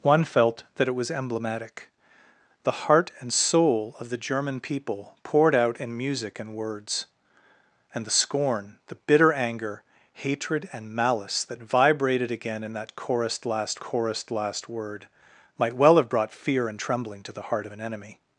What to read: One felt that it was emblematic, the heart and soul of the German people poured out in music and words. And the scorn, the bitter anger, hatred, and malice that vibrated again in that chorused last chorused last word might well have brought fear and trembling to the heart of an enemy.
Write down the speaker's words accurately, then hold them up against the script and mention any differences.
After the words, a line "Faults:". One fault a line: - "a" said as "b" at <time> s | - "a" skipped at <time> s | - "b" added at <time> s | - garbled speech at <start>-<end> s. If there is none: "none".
One felt that it was emblematic, the heart and soul of the German people poured out in music and words. And the scorn, the bitter anger, hatred, and malice that vibrated again in that chorused last chorused last word might well have brought fear and trembling to the heart of an enemy.
Faults:
none